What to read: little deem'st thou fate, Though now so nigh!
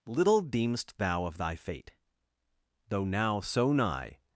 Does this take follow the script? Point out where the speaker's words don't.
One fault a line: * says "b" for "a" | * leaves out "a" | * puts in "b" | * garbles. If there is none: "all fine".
* puts in "of thy"